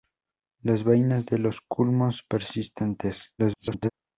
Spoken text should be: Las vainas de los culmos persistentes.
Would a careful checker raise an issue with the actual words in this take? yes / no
yes